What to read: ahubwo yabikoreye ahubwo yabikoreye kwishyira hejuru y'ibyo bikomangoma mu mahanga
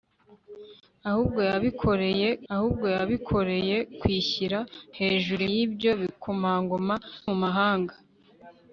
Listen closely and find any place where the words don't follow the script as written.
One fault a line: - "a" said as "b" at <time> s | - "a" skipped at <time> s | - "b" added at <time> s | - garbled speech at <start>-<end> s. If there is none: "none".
none